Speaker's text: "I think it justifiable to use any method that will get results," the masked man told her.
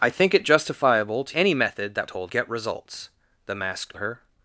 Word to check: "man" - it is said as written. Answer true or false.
false